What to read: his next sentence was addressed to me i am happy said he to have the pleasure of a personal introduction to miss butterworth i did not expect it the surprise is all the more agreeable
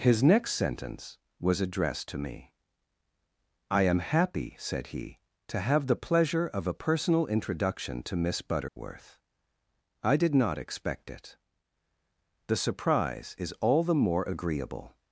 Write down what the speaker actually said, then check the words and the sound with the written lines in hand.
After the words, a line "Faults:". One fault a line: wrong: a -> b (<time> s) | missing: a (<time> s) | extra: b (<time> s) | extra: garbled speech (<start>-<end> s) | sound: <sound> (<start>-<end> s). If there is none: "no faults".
his next sentence was addressed to me i am happy said he to have the pleasure of a personal introduction to miss butterworth i did not expect it the surprise is all the more agreeable
Faults:
sound: dropout (8.7-8.8 s)